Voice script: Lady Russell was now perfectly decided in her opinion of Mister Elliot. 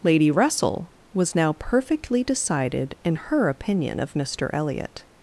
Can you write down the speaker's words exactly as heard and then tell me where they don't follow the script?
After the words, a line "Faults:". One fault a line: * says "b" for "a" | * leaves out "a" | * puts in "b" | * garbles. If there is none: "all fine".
Lady Russell was now perfectly decided in her opinion of Mister Elliot.
Faults:
all fine